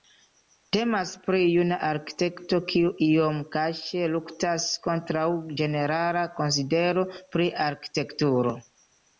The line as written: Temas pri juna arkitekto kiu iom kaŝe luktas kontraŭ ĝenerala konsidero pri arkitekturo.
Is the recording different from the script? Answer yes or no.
no